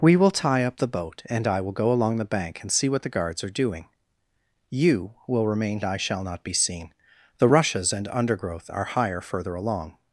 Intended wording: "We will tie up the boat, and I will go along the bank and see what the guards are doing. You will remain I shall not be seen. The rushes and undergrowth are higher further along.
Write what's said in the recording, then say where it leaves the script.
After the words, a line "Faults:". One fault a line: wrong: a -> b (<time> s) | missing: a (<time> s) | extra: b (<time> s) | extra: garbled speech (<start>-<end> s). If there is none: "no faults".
"We will tie up the boat, and I will go along the bank and see what the guards are doing. You will remain I shall not be seen. The rushes and undergrowth are higher further along.
Faults:
no faults